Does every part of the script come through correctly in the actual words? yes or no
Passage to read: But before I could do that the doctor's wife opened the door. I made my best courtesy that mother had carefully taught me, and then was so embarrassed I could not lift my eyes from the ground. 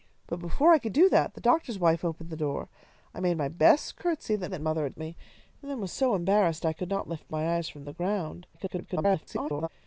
no